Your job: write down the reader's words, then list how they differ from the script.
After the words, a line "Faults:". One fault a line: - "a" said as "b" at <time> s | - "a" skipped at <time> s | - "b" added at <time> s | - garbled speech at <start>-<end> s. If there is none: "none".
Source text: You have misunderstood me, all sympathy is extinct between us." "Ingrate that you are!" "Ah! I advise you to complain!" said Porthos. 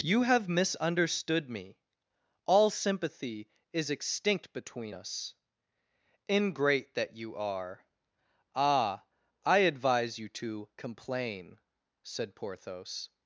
You have misunderstood me, all sympathy is extinct between us." "Ingrate that you are!" "Ah! I advise you to complain!" said Porthos.
Faults:
none